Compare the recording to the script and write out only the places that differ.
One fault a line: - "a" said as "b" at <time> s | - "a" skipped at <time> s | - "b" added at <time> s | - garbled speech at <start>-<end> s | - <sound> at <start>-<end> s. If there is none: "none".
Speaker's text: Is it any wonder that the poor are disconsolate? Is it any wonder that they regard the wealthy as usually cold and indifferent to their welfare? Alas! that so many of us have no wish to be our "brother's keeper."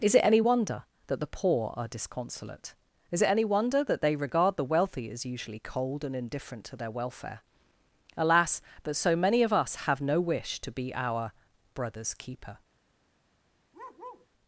- "that" said as "but" at 8.8 s
- bark at 13.7-14.3 s